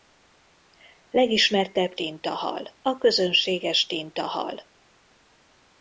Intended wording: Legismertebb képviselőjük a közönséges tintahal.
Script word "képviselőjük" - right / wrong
wrong